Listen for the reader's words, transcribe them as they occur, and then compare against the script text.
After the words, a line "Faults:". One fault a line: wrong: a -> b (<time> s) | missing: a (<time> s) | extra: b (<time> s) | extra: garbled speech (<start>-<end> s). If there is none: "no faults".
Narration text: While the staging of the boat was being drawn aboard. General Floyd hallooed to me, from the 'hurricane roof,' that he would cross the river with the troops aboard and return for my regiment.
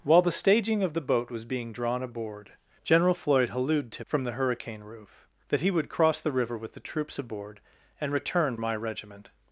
While the staging of the boat was being drawn aboard. General Floyd hallooed to from the 'hurricane roof,' that he would cross the river with the troops aboard and return my regiment.
Faults:
missing: me (4.0 s)
missing: for (8.6 s)